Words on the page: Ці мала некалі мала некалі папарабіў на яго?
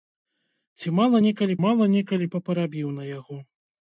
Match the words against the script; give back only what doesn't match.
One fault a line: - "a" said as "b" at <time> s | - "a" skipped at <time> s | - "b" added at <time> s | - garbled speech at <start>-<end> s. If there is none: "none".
none